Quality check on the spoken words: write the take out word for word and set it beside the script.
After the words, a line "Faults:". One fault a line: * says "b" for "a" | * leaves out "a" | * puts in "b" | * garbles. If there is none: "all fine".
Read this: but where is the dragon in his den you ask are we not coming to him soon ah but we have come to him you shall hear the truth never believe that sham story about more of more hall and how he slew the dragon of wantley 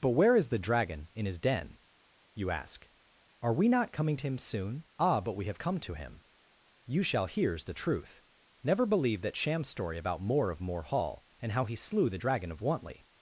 but where is the dragon in his den you ask are we not coming to him soon ah but we have come to him you shall hears the truth never believe that sham story about more of more hall and how he slew the dragon of wantley
Faults:
* says "hears" for "hear"